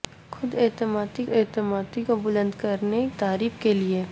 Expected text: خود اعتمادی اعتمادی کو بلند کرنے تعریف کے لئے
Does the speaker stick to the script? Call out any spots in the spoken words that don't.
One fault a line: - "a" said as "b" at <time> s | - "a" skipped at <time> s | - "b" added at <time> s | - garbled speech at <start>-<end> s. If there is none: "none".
none